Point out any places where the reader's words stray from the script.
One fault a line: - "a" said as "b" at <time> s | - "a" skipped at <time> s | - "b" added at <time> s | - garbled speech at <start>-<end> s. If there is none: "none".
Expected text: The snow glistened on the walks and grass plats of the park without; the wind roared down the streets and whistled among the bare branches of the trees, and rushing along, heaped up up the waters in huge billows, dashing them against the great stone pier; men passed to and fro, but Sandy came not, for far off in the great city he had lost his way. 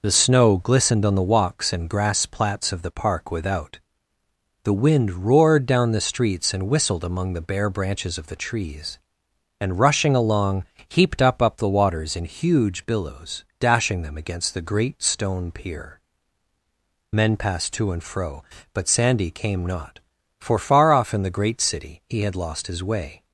none